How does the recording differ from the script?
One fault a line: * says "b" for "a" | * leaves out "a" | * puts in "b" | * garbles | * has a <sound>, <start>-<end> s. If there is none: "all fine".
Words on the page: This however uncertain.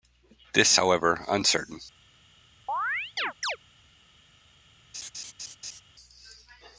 * has a chirp, 2.7-3.6 s
* has a laugh, 4.9-5.8 s